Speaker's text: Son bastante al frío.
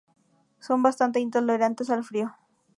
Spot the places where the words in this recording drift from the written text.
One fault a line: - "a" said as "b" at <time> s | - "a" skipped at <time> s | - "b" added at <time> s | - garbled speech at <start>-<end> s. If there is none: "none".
- "intolerantes" added at 1.2 s